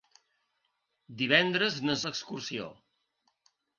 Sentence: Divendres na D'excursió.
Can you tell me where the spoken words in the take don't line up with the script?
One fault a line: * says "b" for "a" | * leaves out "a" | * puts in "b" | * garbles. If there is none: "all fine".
all fine